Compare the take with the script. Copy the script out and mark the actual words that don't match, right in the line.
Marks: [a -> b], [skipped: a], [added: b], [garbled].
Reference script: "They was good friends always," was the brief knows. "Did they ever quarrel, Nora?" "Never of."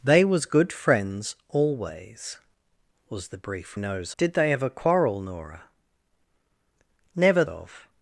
"They was good friends always," was the brief knows. "Did they ever quarrel, Nora?" "Never of."